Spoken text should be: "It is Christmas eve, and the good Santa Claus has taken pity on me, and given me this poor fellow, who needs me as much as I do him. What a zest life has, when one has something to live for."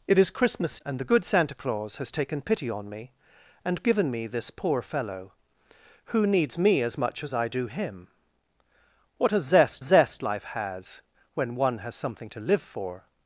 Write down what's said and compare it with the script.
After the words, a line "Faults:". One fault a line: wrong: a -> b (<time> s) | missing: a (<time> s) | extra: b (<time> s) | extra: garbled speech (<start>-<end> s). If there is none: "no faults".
"It is Christmas and the good Santa Claus has taken pity on me, and given me this poor fellow, who needs me as much as I do him. What a zest zest life has, when one has something to live for."
Faults:
missing: eve (0.8 s)
extra: zest (9.8 s)